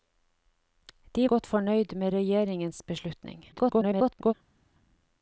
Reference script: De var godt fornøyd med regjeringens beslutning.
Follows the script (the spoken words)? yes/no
no